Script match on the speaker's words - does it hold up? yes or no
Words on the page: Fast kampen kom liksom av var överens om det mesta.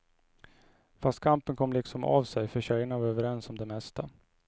no